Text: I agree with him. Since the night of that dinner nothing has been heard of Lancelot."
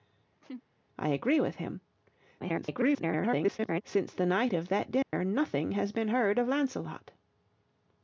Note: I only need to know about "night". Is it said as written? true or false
true